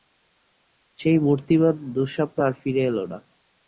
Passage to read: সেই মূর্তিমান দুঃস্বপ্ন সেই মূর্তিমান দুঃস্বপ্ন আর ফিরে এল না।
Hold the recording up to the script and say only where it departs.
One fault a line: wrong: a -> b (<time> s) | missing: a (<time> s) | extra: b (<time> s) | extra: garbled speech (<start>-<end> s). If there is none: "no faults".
missing: সেই মূর্তিমান দুঃস্বপ্ন (2.4 s)